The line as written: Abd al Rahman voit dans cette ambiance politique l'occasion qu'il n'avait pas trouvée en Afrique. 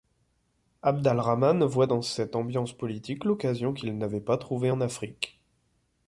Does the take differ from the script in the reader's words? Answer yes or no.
no